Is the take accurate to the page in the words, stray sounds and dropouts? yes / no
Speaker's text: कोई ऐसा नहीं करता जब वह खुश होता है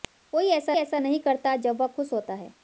no